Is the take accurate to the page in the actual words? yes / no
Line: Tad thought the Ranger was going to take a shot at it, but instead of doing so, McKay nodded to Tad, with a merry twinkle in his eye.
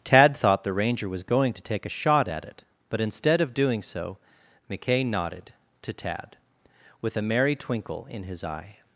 yes